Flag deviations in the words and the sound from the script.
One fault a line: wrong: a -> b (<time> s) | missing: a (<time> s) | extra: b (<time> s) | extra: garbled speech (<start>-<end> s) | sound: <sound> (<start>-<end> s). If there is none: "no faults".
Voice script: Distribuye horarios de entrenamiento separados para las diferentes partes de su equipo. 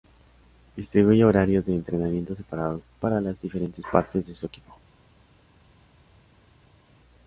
no faults